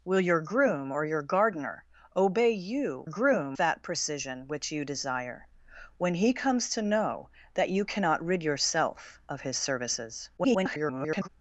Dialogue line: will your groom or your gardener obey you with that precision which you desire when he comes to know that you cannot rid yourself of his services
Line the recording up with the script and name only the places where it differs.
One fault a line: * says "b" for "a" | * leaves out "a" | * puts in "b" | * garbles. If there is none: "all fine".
* says "groom" for "with"
* garbles